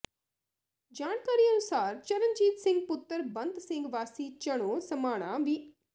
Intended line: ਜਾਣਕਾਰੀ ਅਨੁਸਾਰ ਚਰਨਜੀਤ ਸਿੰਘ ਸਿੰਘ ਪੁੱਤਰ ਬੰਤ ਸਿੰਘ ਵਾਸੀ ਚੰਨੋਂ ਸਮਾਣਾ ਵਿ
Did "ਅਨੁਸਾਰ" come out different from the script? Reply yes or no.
no